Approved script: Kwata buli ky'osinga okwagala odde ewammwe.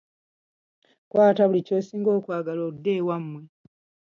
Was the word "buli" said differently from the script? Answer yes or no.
no